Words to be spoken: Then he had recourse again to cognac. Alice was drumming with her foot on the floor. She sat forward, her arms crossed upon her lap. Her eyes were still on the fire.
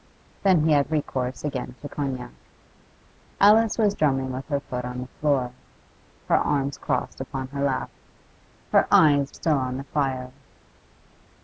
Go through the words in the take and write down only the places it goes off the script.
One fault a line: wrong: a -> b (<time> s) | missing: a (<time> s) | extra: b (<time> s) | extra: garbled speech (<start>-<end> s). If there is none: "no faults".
missing: She sat forward (5.5 s)
missing: were (9.4 s)